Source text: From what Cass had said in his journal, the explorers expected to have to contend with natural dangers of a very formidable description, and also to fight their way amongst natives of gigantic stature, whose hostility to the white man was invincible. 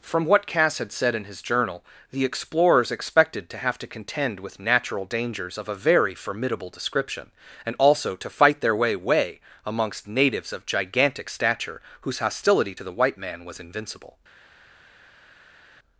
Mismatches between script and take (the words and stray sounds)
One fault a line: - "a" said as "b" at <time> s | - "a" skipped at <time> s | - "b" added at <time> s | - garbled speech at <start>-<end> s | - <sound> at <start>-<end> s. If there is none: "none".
- "way" added at 8.9 s